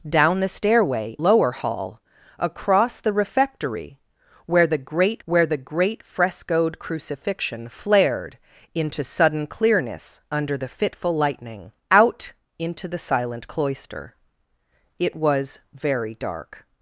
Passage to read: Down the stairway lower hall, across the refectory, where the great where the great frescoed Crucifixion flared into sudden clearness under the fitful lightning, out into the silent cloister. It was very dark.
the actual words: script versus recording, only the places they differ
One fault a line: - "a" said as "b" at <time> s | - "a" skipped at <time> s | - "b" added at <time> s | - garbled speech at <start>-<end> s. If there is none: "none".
none